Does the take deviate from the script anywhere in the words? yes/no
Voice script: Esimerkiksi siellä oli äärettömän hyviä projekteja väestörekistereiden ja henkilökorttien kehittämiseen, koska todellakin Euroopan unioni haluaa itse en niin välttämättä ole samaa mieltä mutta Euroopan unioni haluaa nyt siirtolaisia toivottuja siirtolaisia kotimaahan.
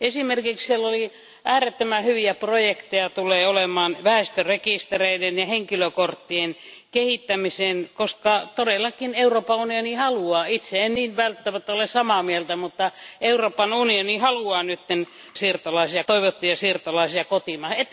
no